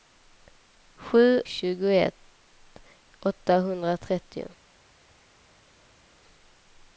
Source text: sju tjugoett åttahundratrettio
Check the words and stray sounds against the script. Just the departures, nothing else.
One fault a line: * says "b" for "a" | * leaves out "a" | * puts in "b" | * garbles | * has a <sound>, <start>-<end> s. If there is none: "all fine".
all fine